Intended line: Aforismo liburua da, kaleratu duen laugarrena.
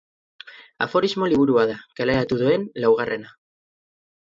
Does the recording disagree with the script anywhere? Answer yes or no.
no